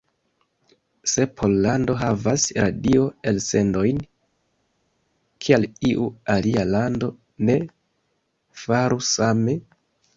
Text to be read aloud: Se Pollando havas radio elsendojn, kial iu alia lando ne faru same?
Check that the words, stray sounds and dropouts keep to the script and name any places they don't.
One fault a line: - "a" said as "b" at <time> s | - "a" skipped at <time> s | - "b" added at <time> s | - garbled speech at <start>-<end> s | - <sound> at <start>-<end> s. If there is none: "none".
none